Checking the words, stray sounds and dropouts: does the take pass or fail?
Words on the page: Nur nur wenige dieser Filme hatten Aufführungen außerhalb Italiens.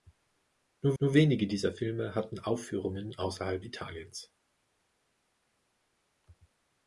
pass